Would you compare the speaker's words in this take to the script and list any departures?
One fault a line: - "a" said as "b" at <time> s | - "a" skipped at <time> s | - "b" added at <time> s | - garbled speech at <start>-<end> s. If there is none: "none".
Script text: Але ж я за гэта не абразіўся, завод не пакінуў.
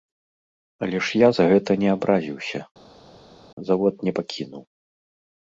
none